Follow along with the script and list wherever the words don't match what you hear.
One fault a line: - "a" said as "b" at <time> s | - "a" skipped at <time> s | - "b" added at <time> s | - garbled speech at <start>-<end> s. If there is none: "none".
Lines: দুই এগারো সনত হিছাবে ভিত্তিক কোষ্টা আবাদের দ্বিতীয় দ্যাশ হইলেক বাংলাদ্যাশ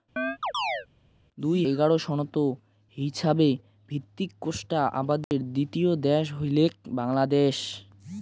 none